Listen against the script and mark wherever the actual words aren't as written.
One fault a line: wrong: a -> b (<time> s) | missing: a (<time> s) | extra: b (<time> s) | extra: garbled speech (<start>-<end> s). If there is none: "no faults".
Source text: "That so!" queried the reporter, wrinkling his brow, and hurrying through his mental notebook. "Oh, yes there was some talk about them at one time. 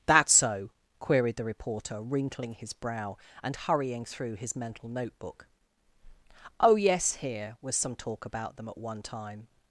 wrong: there -> here (7.2 s)